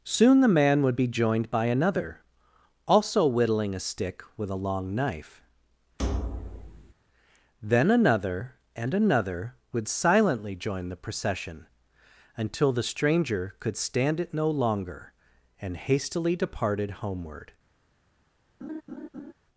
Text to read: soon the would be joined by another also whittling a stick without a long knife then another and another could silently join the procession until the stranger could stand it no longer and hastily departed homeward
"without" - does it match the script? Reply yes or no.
no